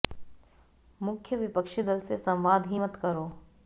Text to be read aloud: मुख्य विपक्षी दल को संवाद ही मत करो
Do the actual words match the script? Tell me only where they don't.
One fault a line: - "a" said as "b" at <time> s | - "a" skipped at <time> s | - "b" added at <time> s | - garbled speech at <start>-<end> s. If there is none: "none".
- "को" said as "से" at 2.0 s